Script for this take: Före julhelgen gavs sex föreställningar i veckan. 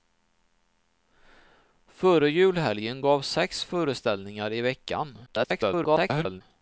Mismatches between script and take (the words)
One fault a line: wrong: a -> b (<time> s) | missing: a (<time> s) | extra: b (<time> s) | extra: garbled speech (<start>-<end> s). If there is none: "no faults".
extra: garbled speech (5.3-6.4 s)